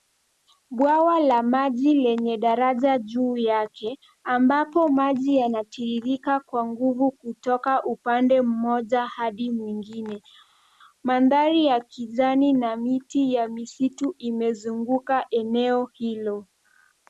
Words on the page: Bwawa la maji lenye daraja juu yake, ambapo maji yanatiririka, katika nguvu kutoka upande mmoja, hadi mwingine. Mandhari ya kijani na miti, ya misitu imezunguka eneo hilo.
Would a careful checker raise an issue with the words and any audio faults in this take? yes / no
yes